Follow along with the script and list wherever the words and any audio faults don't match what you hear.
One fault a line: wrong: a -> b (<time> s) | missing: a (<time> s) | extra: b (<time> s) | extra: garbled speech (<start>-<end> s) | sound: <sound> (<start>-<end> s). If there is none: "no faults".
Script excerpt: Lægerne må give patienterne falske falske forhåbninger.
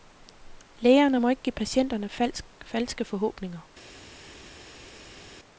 extra: ikke (1.3 s)
missing: falske (3.0 s)